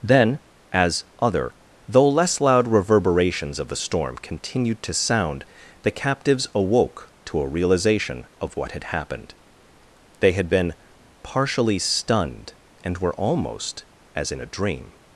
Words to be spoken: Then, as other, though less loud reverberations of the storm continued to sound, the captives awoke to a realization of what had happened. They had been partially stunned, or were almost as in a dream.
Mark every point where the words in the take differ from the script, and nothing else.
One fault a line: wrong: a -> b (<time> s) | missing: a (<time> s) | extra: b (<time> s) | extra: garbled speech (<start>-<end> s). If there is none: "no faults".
wrong: or -> and (12.8 s)